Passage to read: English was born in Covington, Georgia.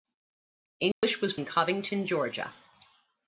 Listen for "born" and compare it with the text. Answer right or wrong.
wrong